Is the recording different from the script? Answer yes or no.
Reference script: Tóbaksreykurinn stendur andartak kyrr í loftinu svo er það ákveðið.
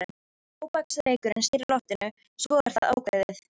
yes